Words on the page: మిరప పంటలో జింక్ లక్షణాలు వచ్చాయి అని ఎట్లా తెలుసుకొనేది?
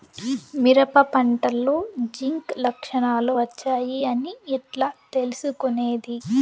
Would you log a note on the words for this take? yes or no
no